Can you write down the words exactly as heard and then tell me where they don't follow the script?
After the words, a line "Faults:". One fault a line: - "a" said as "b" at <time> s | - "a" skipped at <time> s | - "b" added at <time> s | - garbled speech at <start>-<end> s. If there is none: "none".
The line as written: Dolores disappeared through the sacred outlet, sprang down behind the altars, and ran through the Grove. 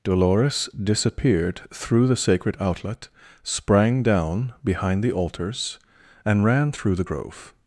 Dolores disappeared through the sacred outlet, sprang down behind the altars, and ran through the Grove.
Faults:
none